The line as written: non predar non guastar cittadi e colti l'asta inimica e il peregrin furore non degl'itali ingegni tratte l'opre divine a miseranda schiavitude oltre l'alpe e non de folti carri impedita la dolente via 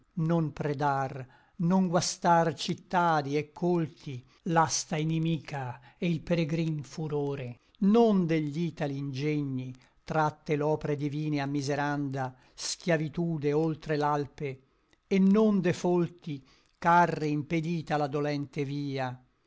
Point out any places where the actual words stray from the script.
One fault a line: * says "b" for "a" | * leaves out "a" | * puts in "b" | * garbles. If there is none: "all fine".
all fine